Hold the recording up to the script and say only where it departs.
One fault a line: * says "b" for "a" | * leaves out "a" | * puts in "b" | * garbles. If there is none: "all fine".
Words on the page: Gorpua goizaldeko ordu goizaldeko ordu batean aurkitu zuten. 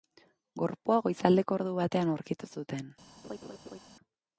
* leaves out "goizaldeko ordu"